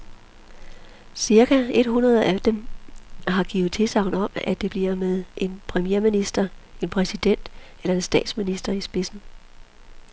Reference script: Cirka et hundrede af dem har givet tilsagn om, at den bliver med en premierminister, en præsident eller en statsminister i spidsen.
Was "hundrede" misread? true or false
false